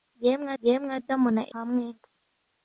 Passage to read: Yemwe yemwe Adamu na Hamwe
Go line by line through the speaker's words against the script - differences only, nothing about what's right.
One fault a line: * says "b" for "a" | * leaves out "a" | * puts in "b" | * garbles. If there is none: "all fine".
all fine